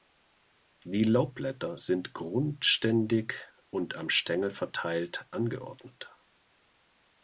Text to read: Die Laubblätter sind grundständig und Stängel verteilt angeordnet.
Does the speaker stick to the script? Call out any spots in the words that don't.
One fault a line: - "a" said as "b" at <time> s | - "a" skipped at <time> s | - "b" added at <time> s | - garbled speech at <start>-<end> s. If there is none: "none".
- "am" added at 4.0 s